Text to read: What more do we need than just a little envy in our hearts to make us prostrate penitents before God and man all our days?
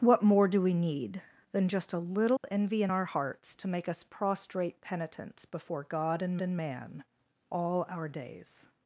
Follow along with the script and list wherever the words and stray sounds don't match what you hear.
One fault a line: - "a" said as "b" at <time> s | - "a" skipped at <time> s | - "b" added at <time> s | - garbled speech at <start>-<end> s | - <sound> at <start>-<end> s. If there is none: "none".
- dropout at 2.4-2.4 s
- "and" added at 6.4 s